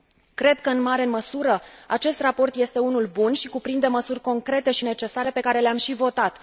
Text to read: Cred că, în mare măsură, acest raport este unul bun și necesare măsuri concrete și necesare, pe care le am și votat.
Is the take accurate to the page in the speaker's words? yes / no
no